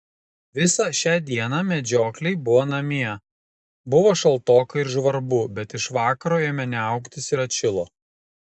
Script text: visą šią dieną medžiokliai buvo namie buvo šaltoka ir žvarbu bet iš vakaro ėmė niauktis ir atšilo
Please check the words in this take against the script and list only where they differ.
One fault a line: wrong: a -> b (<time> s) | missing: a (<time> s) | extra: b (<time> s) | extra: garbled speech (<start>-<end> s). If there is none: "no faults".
no faults